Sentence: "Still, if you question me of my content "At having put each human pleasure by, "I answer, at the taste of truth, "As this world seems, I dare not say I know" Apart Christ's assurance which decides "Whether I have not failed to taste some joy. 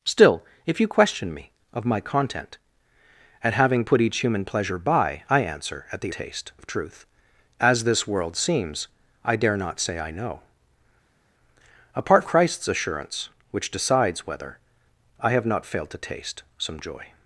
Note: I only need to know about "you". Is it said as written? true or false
true